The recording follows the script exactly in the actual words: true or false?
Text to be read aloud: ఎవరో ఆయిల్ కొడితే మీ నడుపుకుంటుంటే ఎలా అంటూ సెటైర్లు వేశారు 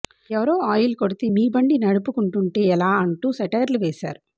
false